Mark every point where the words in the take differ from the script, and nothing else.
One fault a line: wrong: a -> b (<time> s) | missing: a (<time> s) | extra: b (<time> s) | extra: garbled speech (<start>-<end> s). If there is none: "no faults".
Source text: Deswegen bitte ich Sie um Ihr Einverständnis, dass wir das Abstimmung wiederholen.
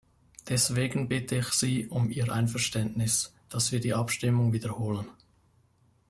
wrong: das -> die (3.8 s)